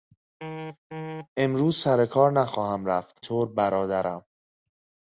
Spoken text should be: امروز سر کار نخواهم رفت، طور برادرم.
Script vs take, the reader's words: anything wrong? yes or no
no